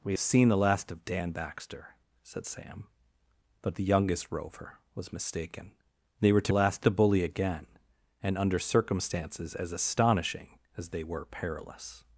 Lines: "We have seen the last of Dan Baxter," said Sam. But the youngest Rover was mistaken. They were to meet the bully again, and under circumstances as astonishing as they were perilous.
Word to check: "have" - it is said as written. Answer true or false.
false